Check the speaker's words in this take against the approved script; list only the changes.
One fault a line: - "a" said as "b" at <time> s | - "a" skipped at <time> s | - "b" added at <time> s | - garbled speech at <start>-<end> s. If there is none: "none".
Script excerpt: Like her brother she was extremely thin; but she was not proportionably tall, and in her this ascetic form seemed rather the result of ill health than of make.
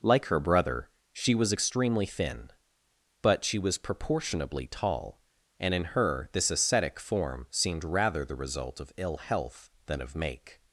- "not" skipped at 3.8 s